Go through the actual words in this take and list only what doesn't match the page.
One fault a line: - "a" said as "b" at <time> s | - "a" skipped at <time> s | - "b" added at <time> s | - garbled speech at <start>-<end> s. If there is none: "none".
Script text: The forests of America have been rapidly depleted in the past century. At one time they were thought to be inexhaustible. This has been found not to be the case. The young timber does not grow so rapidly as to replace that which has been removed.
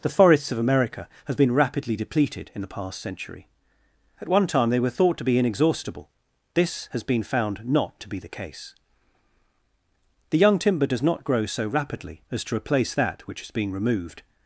- "has been" said as "is being" at 13.4 s